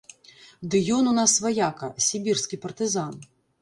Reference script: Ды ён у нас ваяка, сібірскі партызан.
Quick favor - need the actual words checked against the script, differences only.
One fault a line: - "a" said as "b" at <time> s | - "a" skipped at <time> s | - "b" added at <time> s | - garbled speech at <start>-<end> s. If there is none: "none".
none